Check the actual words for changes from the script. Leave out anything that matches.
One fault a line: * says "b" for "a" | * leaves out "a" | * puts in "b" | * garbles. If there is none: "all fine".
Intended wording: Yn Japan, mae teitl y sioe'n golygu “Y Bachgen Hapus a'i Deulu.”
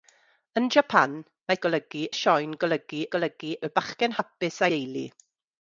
* says "golygu" for "teitl"
* puts in "golygu"
* leaves out "a'i"